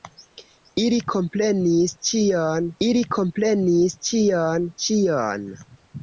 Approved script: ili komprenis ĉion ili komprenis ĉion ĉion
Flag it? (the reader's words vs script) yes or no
no